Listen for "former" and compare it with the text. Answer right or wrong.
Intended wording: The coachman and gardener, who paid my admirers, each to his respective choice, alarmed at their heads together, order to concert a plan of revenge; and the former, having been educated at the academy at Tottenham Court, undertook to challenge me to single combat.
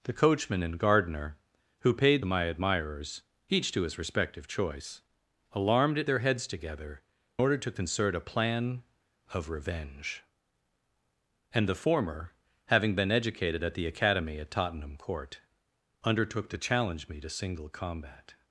right